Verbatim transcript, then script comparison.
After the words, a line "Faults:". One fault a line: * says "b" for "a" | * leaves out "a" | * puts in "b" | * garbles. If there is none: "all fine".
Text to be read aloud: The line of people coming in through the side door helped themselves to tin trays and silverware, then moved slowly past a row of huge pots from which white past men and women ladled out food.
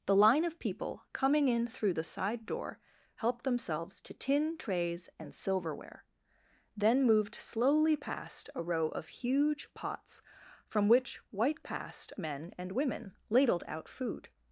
The line of people coming in through the side door helped themselves to tin trays and silverware, then moved slowly past a row of huge pots from which white past men and women ladled out food.
Faults:
all fine